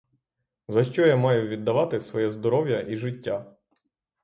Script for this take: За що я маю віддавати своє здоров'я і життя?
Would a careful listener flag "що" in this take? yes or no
no